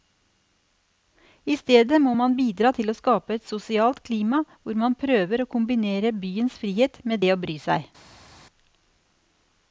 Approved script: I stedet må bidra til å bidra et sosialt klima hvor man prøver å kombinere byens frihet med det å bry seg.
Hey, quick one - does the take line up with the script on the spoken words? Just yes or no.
no